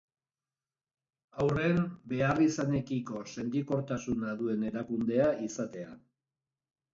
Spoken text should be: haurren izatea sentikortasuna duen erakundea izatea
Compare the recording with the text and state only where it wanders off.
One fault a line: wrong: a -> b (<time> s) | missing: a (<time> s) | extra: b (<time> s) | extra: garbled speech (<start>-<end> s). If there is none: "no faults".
wrong: izatea -> beharrizanekiko (2.1 s)